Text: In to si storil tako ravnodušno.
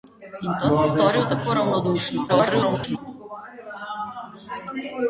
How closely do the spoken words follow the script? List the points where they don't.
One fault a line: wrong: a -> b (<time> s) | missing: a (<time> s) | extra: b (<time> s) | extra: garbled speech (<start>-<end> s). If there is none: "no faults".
extra: garbled speech (2.3-3.0 s)